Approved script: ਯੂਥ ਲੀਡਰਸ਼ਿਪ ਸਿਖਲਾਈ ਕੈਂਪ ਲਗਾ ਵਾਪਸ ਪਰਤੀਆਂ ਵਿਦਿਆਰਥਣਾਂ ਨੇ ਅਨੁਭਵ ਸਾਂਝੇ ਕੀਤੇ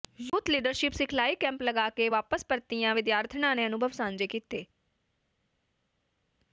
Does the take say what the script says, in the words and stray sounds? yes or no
no